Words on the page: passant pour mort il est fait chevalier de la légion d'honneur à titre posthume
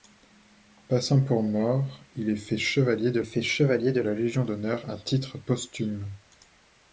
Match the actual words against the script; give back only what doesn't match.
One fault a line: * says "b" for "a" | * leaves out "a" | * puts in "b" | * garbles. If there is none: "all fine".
* puts in "fait chevalier de"